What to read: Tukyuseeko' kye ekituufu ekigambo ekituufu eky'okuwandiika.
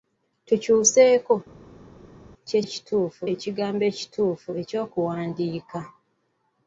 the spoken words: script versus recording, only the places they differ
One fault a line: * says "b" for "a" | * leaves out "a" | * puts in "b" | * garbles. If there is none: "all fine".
all fine